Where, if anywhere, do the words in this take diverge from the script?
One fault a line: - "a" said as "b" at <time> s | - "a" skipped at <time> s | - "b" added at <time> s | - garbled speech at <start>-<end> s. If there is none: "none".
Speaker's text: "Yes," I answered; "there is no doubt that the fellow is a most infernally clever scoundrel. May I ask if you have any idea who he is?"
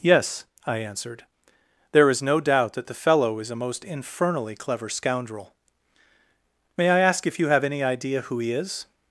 none